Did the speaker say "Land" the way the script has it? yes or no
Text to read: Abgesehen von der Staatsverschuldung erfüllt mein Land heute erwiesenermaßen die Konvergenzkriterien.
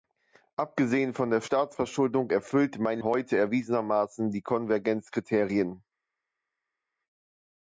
no